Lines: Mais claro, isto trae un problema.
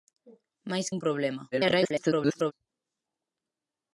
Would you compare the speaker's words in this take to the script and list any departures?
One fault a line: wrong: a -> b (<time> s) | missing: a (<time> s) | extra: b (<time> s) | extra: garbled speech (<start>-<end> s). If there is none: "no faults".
missing: claro isto trae (0.9 s)
extra: garbled speech (1.5-2.5 s)